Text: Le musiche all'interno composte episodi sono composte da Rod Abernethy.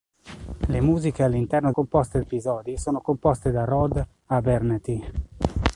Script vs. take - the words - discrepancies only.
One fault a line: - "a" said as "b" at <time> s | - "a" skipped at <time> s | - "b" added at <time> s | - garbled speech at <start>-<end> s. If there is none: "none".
none